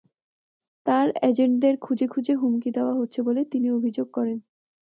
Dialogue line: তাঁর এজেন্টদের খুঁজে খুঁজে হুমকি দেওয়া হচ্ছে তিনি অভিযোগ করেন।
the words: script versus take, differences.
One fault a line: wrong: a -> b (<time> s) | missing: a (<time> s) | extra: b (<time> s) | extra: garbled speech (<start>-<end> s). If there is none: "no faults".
extra: বলে (3.2 s)